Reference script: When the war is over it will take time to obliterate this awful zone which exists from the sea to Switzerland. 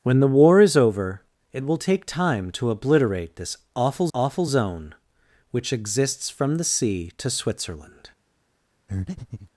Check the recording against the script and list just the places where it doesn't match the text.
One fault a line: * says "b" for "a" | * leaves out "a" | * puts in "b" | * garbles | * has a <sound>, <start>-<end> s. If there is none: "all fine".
* puts in "awful"
* has a breath, 8.9-9.5 s